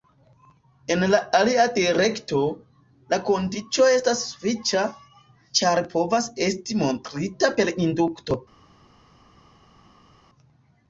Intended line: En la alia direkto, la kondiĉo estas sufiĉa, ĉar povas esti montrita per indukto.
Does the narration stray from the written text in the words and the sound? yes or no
no